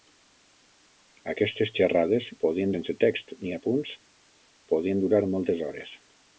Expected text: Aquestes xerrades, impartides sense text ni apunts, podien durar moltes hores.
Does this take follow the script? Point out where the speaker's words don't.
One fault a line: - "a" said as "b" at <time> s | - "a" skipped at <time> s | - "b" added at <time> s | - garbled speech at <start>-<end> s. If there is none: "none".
- "impartides" said as "podien" at 2.4 s